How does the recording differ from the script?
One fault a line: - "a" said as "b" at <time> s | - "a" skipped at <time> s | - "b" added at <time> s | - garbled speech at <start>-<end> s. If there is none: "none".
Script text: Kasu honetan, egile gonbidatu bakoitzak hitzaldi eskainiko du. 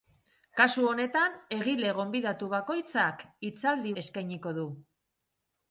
none